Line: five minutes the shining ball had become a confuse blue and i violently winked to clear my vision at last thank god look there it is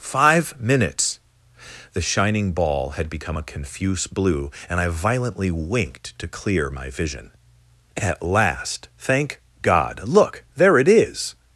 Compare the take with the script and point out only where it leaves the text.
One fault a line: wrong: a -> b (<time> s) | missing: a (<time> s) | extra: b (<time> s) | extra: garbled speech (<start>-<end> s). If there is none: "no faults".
no faults